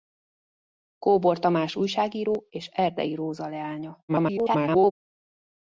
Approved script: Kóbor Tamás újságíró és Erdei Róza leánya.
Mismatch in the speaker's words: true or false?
true